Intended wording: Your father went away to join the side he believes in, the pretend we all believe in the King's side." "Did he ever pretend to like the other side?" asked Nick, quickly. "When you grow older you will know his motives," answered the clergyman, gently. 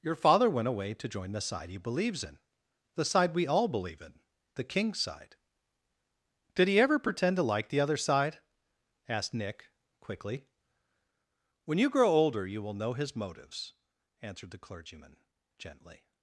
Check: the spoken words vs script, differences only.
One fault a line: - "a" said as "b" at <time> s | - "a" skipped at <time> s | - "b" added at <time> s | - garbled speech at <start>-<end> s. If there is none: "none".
- "pretend" said as "side" at 3.0 s